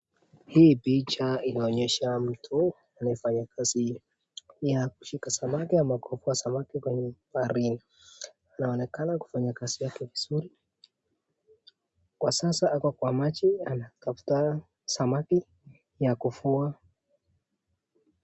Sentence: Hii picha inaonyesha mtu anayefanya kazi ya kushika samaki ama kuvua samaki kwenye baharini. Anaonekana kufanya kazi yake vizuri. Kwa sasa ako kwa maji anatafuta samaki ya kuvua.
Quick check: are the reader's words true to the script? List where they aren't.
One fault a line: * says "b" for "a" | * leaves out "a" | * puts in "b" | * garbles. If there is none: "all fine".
all fine